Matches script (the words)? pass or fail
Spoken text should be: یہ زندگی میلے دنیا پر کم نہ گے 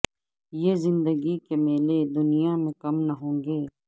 fail